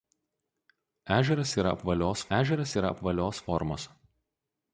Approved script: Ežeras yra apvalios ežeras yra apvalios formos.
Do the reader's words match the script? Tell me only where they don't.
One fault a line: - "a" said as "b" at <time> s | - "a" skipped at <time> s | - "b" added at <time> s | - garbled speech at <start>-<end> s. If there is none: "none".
none